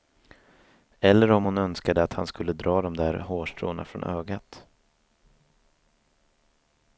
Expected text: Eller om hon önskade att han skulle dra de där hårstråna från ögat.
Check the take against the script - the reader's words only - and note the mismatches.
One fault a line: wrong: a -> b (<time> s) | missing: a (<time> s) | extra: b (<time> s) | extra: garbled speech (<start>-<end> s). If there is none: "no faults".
no faults